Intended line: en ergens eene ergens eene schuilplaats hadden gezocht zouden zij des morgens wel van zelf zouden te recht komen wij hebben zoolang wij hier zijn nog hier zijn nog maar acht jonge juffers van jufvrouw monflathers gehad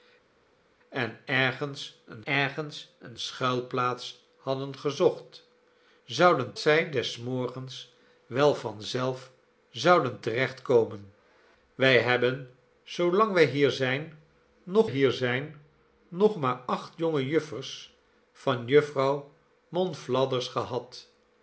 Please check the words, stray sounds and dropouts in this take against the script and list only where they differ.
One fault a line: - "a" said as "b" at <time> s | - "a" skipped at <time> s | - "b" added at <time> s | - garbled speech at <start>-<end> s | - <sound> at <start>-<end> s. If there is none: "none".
none